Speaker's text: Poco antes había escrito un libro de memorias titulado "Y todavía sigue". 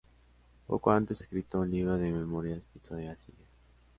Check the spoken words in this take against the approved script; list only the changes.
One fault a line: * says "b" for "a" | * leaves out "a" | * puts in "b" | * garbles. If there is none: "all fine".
* leaves out "había"
* leaves out "titulado"